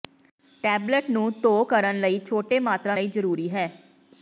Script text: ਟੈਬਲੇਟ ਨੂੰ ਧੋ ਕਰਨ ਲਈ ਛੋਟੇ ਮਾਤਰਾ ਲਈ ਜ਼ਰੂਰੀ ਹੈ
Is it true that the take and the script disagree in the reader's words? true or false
false